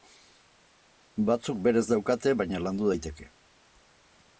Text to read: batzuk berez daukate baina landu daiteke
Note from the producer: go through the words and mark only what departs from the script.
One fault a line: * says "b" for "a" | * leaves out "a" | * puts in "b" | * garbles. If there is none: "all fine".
all fine